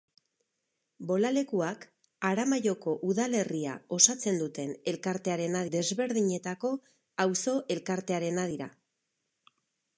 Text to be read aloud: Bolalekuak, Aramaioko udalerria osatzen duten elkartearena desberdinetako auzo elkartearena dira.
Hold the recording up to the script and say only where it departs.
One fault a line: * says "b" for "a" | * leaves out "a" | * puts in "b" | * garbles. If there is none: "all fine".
all fine